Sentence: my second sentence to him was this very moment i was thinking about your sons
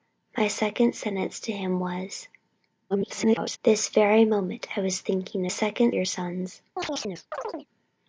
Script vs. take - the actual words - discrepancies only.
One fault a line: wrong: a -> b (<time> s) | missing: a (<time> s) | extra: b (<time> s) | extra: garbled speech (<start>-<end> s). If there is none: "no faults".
extra: garbled speech (2.9-3.6 s)
wrong: about -> second (5.5 s)